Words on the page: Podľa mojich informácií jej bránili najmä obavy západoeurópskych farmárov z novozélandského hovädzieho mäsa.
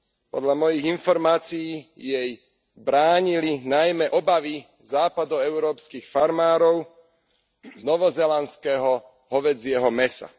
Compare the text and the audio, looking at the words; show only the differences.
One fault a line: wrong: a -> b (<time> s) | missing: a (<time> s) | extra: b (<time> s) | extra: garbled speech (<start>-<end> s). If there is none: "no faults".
no faults